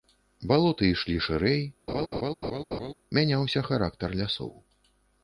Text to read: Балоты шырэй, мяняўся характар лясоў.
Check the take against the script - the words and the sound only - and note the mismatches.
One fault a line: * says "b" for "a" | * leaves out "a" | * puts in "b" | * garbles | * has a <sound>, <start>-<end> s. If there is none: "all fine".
* puts in "ішлі"
* has a laugh, 1.9-2.9 s